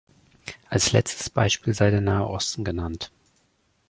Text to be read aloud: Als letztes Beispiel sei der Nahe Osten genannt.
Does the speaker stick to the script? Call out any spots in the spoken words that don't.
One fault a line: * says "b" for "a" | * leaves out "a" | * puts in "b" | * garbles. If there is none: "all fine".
all fine